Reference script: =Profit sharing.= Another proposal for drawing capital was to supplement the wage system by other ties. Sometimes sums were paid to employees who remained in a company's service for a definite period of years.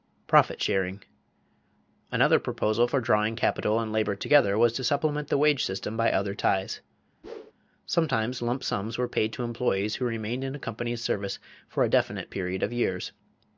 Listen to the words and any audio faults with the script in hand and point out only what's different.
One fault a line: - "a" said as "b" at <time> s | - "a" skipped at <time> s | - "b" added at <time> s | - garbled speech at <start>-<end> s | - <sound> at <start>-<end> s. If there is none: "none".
- "and labor together" added at 3.8 s
- whoosh at 7.2-7.5 s
- "lump" added at 8.4 s